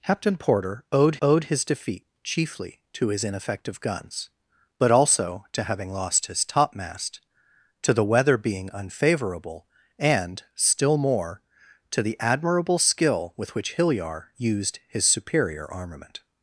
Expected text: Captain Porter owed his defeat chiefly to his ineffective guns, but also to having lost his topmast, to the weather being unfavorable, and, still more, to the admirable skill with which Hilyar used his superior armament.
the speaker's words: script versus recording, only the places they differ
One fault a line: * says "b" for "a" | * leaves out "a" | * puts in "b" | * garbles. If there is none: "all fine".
* puts in "owed"